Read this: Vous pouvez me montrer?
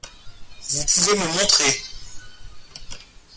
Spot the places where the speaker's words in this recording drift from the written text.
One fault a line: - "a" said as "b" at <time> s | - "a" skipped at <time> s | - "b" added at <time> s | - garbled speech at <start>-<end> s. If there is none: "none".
none